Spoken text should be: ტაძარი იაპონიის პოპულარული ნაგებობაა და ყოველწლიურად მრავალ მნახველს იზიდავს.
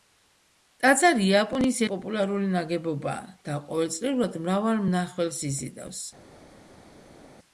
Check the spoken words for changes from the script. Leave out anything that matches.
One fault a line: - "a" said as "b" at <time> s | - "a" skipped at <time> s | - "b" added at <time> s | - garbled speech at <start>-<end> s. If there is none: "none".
none